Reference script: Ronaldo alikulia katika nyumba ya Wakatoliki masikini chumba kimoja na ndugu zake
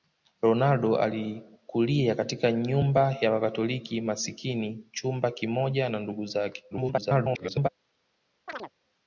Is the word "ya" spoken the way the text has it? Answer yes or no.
yes